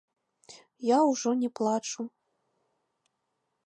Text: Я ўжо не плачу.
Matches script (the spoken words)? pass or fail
pass